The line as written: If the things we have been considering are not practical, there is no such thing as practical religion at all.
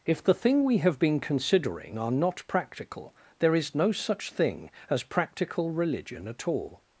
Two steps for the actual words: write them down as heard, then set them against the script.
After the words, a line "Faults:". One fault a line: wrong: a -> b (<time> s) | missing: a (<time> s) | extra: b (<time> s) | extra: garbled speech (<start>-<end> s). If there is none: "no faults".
If the thing we have been considering are not practical, there is no such thing as practical religion at all.
Faults:
wrong: things -> thing (0.3 s)